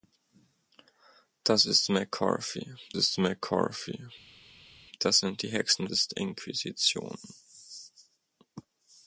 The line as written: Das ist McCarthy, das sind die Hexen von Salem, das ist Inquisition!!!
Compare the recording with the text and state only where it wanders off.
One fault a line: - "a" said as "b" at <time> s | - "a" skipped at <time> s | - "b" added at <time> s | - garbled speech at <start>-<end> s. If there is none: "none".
- "ist McCarthy" added at 2.9 s
- "von Salem das" skipped at 5.9 s